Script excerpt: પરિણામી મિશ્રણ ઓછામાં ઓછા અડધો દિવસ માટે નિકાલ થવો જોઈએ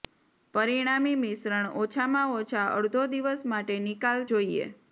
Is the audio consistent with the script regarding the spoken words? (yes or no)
no